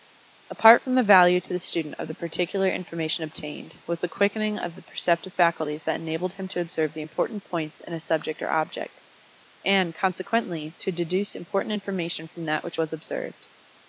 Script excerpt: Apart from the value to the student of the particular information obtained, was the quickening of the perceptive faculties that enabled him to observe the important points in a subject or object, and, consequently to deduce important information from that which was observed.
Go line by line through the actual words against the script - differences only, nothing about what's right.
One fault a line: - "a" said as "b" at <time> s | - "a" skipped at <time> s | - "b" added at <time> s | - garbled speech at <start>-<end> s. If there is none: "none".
none